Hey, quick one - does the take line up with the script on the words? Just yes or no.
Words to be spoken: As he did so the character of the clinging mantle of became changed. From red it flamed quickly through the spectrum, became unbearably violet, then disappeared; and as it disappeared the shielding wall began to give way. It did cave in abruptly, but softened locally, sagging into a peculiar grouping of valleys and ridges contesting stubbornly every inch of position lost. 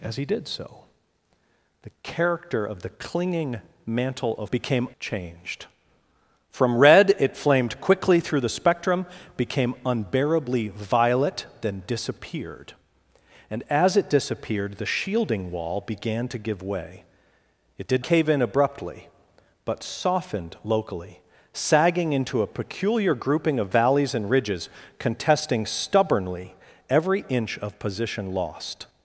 yes